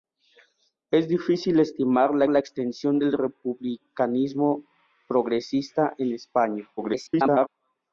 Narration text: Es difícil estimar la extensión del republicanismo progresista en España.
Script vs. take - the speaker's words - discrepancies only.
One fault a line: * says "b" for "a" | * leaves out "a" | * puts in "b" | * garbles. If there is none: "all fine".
* puts in "la"
* garbles